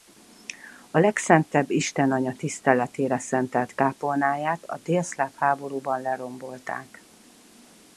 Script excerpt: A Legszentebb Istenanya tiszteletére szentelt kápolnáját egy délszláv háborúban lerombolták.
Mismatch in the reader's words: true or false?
true